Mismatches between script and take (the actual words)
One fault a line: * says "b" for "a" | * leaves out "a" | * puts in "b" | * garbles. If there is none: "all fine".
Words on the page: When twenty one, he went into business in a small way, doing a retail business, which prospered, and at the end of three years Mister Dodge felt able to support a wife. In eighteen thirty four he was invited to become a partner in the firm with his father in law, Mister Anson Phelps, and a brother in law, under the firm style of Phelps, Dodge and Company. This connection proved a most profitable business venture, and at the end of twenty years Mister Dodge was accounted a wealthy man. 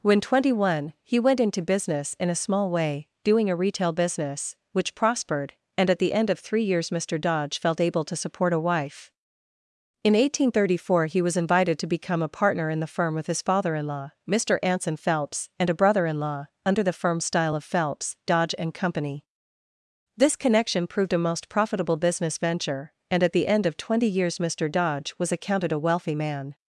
all fine